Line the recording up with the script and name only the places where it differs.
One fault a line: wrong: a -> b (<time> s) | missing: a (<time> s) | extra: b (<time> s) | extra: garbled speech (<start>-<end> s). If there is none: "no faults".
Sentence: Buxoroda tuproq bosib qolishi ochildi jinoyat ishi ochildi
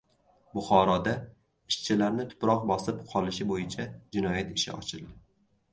extra: ishchilarni (1.7 s)
wrong: ochildi -> bo‘yicha (3.6 s)